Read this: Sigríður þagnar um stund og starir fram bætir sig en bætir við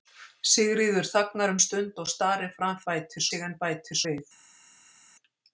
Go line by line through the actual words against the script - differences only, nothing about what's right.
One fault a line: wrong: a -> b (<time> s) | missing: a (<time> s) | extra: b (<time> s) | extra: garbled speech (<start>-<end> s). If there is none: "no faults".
no faults